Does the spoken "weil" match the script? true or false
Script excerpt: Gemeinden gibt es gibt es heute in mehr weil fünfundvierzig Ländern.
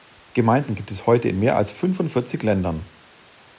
false